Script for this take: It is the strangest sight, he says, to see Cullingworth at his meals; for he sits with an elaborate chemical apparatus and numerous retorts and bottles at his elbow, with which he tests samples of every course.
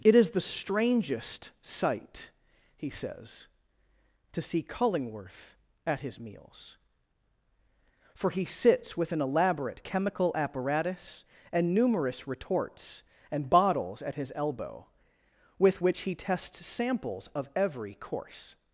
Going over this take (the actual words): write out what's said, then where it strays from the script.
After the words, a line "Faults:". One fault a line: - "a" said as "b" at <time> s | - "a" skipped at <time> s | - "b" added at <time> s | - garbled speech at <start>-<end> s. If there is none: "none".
It is the strangest sight, he says, to see Cullingworth at his meals; for he sits with an elaborate chemical apparatus and numerous retorts and bottles at his elbow, with which he tests samples of every course.
Faults:
none